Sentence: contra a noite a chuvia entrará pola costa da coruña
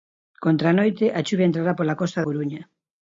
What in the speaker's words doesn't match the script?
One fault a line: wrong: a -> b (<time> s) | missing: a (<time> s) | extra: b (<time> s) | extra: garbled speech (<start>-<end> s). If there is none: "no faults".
missing: da (2.2 s)